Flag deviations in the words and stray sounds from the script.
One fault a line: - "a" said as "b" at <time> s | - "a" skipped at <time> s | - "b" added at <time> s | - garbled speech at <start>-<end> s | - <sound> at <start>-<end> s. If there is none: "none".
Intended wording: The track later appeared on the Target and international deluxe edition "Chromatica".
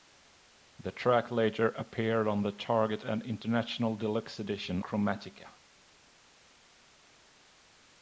none